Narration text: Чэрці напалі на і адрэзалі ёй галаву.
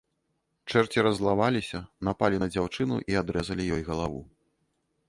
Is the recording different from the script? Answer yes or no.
yes